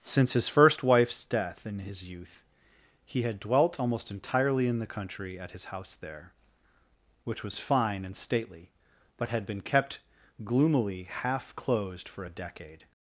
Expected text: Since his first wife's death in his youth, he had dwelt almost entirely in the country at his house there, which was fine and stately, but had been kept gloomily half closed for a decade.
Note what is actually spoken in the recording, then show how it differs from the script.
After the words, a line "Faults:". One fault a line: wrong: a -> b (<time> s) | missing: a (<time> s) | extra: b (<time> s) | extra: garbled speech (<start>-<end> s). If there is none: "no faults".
Since his first wife's death in his youth, he had dwelt almost entirely in the country at his house there, which was fine and stately, but had been kept gloomily half closed for a decade.
Faults:
no faults